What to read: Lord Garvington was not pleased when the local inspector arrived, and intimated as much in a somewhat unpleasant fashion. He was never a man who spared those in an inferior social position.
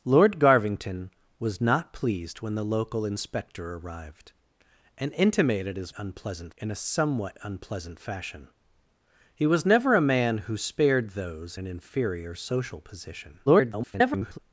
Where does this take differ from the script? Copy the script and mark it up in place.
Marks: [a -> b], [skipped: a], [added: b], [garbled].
Lord Garvington was not pleased when the local inspector arrived, and intimated as [much -> unpleasant] in a somewhat unpleasant fashion. He was never a man who spared those [skipped: in] an inferior social position. [garbled]